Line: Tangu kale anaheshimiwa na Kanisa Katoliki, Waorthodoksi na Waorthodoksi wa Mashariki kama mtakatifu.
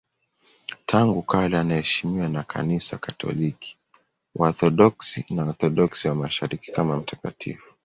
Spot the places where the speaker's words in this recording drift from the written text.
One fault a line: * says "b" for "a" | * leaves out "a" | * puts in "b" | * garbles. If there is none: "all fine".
all fine